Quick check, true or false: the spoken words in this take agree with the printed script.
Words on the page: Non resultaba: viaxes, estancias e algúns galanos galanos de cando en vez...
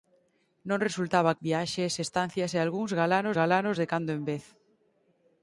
true